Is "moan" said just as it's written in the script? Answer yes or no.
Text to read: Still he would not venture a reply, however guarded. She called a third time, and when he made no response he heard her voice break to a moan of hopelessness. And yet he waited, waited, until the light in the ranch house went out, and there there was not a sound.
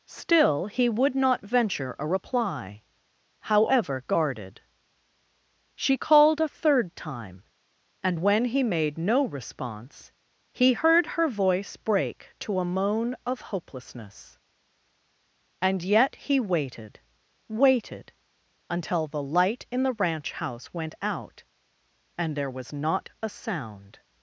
yes